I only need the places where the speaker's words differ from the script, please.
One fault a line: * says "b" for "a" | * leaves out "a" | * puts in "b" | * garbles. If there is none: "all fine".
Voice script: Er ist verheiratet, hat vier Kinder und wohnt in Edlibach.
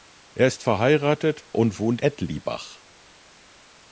* leaves out "hat vier Kinder"
* leaves out "in"